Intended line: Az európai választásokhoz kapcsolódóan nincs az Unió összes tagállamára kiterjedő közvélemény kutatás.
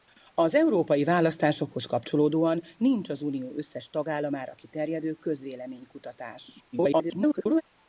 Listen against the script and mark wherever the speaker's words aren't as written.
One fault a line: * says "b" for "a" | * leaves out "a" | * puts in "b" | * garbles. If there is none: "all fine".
* garbles